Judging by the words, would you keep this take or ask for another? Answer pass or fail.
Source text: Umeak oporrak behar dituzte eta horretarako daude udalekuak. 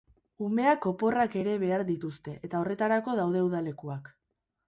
fail